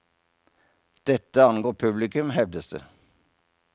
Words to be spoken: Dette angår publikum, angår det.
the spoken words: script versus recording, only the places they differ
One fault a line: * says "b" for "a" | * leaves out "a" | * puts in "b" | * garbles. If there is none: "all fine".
* says "hevdes" for "angår"